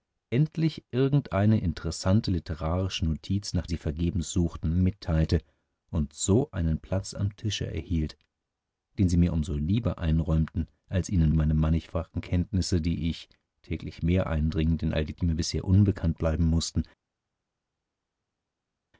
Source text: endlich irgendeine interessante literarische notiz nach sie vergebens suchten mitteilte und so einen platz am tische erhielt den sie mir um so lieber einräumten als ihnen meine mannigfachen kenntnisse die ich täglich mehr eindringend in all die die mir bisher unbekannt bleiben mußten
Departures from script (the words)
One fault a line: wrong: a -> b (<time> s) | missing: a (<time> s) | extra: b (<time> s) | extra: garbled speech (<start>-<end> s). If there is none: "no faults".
no faults